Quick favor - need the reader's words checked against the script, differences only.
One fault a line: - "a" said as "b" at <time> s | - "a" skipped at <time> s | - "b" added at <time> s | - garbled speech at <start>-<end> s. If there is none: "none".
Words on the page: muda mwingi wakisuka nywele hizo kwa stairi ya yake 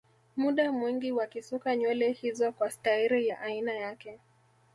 - "aina" added at 3.4 s